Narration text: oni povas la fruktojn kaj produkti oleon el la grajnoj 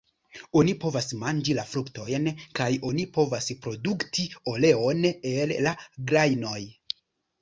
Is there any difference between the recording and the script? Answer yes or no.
yes